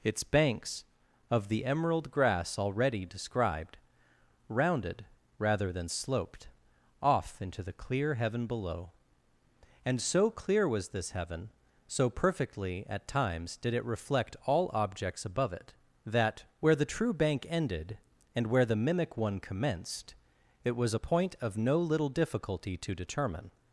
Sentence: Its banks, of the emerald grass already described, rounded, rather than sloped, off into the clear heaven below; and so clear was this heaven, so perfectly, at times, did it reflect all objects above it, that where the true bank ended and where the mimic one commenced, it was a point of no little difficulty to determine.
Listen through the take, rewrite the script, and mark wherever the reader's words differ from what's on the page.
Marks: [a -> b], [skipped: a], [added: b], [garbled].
Its banks, of the emerald grass already described, rounded, rather than sloped, off into the clear heaven below; and so clear was this heaven, so perfectly, at times, did it reflect all objects above it, that where the true bank ended and where the mimic one commenced, it was a point of no little difficulty to determine.